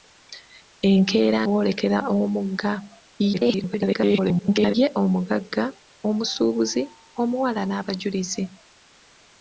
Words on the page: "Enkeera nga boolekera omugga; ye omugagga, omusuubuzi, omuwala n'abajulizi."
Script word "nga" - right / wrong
wrong